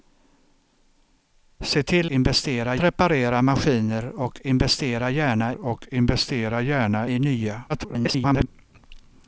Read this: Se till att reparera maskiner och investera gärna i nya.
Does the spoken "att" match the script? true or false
false